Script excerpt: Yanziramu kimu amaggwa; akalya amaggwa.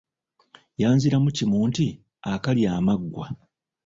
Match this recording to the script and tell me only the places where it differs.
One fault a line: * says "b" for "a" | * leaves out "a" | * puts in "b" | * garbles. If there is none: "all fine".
* says "nti" for "amaggwa"